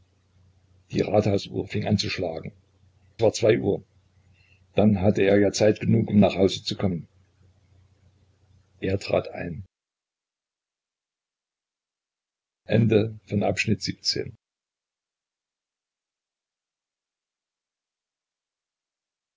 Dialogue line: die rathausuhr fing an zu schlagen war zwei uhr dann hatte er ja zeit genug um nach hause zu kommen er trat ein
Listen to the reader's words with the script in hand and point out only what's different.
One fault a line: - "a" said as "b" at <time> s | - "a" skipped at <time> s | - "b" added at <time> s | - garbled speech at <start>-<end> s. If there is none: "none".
none